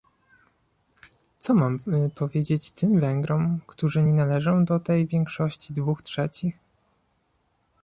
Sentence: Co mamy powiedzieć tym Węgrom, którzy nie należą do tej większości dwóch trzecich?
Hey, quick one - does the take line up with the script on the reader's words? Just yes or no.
yes